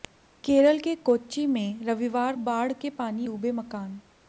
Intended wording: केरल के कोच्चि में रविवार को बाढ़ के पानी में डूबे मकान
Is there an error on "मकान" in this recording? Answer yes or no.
no